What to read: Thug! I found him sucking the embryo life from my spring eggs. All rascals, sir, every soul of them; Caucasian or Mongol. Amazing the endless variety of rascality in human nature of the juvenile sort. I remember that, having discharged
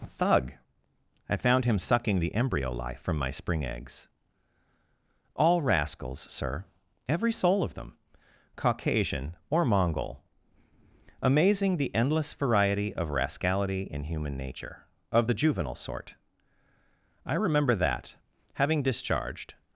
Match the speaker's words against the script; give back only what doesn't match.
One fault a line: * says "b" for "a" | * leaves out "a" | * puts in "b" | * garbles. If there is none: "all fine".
all fine